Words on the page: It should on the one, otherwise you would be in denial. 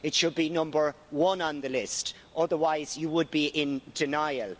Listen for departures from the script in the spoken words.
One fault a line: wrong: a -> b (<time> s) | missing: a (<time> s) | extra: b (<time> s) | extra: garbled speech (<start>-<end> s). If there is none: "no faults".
extra: be number one (0.3 s)
wrong: one -> list (1.7 s)